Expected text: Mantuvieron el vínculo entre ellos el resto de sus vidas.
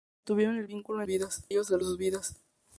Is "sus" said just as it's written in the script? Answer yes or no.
yes